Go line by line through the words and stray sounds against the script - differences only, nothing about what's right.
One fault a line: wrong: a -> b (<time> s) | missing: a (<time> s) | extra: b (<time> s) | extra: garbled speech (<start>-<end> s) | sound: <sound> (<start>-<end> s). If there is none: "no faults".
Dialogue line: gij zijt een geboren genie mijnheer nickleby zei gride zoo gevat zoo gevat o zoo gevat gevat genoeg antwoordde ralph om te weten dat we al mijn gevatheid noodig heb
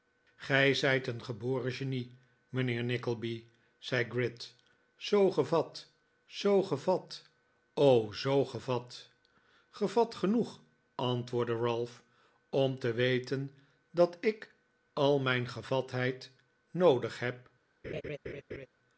wrong: we -> ik (14.2 s)
sound: laugh (17.8-18.7 s)